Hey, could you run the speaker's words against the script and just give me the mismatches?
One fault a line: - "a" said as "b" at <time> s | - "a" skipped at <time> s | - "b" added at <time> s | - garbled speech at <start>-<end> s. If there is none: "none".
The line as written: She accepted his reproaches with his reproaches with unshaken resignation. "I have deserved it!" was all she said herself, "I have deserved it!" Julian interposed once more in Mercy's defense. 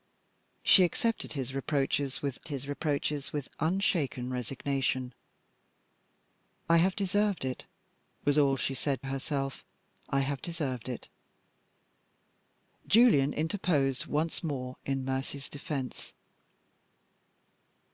none